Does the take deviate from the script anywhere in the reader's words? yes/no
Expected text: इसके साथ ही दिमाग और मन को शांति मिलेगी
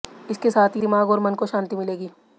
no